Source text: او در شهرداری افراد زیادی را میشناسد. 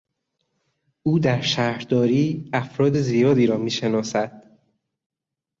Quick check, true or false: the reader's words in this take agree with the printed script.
true